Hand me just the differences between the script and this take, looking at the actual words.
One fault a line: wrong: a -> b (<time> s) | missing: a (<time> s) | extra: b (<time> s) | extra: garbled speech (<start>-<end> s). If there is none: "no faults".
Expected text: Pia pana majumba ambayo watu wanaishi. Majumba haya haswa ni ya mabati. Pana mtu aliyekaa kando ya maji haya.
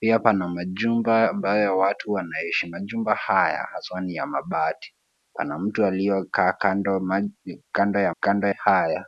wrong: maji -> kando (8.2 s)